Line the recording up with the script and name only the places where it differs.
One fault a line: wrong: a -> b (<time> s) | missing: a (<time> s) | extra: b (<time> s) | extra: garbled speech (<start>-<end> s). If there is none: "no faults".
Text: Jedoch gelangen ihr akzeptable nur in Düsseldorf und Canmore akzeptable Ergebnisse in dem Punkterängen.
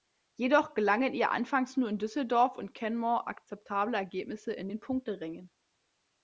wrong: akzeptable -> anfangs (1.3 s)
wrong: dem -> den (4.7 s)